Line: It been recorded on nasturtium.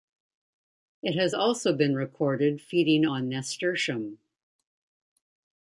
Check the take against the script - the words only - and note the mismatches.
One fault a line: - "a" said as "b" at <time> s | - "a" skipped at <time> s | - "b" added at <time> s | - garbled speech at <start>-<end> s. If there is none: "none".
- "has also" added at 1.1 s
- "feeding" added at 2.6 s